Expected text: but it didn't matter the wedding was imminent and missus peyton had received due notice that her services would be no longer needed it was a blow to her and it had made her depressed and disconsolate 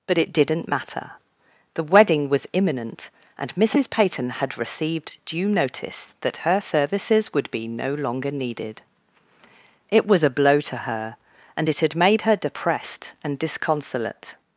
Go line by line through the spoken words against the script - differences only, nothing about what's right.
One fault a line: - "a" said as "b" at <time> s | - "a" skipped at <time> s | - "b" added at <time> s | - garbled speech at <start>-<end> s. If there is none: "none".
none